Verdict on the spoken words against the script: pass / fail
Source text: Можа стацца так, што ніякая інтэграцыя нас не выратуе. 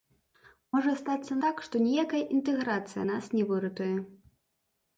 pass